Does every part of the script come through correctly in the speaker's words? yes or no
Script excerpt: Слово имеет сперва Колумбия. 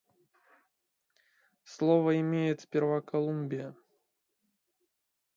yes